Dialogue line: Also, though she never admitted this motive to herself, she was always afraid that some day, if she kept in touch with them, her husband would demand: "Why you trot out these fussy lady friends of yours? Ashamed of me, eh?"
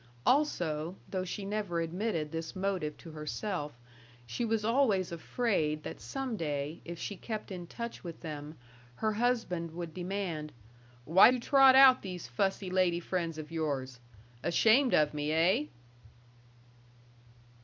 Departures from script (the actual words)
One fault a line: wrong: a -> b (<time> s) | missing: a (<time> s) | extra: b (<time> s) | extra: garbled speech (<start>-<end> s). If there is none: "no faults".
no faults